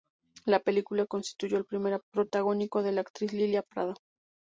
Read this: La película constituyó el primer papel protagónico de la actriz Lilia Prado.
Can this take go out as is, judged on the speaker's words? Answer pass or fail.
fail